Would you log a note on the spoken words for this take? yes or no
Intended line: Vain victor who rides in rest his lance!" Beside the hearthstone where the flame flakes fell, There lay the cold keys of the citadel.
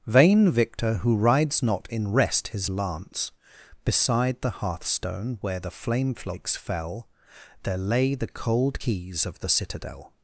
yes